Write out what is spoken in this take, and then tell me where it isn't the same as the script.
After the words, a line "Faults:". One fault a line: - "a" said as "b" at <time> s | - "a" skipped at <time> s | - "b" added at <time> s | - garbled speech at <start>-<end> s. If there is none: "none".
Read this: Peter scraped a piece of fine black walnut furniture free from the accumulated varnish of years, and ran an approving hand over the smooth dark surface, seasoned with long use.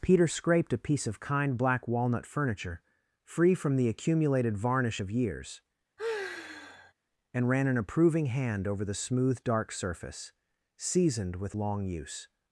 Peter scraped a piece of kind black walnut furniture free from the accumulated varnish of years, and ran an approving hand over the smooth dark surface, seasoned with long use.
Faults:
- "fine" said as "kind" at 1.2 s